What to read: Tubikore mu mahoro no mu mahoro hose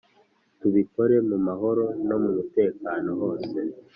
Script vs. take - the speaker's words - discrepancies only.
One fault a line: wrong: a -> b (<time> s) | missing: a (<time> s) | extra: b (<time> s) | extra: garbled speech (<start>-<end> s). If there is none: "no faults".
wrong: mahoro -> mutekano (2.4 s)